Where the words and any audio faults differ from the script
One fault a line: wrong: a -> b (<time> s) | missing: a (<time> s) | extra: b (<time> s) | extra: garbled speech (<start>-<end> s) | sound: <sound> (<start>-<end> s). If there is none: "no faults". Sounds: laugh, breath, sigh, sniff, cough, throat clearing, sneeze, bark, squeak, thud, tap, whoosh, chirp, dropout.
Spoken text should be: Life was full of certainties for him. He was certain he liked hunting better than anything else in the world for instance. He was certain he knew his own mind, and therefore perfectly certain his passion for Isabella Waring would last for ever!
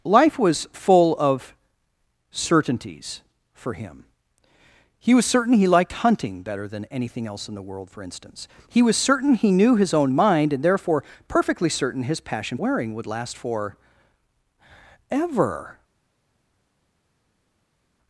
missing: for Isabella (12.6 s)